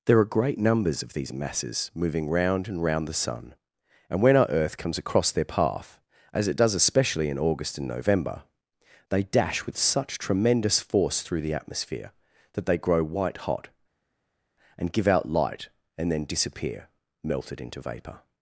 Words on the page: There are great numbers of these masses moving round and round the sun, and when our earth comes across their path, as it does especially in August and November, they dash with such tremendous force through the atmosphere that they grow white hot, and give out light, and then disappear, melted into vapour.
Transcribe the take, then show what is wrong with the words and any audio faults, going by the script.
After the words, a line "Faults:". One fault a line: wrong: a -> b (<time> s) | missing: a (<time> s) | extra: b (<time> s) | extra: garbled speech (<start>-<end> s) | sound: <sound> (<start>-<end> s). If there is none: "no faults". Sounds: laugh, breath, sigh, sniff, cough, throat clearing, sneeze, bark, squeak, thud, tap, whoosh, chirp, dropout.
There are great numbers of these masses moving round and round the sun, and when our earth comes across their path, as it does especially in August and November, they dash with such tremendous force through the atmosphere that they grow white hot, and give out light, and then disappear, melted into vapour.
Faults:
no faults